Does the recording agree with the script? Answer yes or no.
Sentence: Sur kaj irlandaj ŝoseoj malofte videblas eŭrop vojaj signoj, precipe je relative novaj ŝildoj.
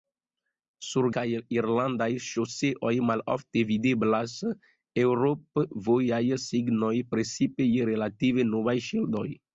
yes